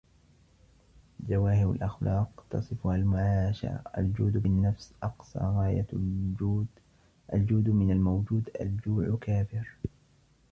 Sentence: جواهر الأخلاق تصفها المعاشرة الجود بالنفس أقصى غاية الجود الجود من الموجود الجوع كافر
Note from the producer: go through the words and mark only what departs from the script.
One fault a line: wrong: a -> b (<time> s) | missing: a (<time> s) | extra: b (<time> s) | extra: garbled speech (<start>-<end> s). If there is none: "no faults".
no faults